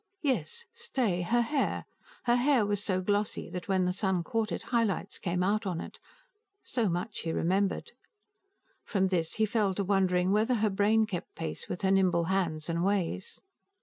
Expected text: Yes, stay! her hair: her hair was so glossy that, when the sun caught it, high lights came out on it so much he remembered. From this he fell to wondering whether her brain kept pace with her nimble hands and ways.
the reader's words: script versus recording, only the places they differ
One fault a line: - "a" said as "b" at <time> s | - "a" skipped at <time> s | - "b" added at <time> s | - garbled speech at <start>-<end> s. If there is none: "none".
none